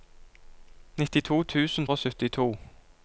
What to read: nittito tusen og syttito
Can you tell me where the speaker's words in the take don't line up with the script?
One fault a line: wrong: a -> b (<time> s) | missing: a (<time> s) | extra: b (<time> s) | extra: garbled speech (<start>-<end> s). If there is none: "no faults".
no faults